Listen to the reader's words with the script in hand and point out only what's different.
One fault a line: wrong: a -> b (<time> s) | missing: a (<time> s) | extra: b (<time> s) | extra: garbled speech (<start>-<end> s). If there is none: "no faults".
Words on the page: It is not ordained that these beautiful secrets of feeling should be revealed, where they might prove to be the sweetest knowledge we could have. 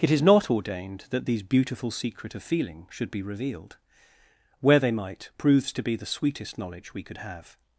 wrong: secrets -> secret (1.9 s)
wrong: prove -> proves (5.4 s)